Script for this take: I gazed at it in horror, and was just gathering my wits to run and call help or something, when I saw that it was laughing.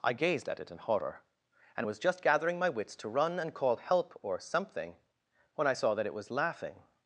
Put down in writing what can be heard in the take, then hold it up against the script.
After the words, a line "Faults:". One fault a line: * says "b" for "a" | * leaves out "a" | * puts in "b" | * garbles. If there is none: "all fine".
I gazed at it in horror, and was just gathering my wits to run and call help or something, when I saw that it was laughing.
Faults:
all fine